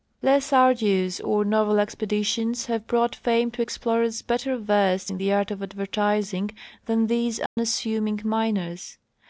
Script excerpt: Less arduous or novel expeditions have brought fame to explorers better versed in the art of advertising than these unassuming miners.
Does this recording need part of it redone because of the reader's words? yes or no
no